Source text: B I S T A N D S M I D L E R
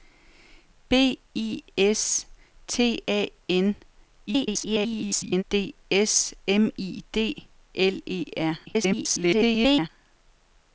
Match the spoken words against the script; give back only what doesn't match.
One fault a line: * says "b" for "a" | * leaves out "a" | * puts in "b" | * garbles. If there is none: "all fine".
* garbles
* garbles